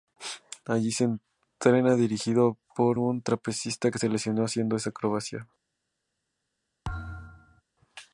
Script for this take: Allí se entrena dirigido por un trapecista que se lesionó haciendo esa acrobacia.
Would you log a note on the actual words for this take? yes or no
no